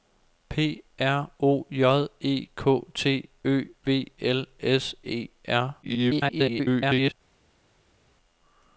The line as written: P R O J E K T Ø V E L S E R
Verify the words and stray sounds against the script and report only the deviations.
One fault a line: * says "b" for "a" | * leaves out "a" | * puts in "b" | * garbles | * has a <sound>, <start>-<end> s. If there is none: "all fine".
* leaves out "E"
* garbles